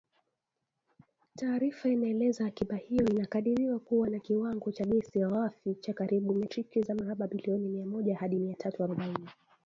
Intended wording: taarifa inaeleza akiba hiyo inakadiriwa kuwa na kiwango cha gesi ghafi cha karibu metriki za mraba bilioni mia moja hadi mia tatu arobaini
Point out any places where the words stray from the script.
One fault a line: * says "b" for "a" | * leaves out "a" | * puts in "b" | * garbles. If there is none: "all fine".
all fine